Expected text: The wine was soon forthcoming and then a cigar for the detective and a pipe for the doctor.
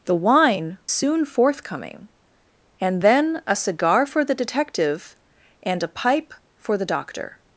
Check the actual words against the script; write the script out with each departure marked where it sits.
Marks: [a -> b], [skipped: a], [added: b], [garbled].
The wine [skipped: was] soon forthcoming and then a cigar for the detective and a pipe for the doctor.